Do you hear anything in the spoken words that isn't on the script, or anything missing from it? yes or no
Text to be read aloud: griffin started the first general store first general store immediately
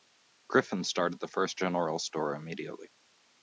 yes